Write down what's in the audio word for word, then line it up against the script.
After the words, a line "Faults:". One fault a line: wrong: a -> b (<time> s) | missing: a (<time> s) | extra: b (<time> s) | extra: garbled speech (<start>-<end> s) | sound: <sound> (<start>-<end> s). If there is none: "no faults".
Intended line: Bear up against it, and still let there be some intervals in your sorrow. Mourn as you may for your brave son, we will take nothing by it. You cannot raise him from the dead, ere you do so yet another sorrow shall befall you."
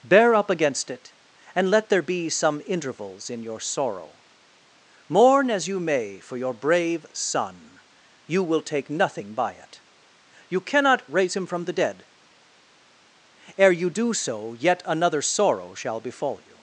Bear up against it, and let there be some intervals in your sorrow. Mourn as you may for your brave son, you will take nothing by it. You cannot raise him from the dead, ere you do so yet another sorrow shall befall you."
Faults:
missing: still (1.7 s)
wrong: we -> you (8.2 s)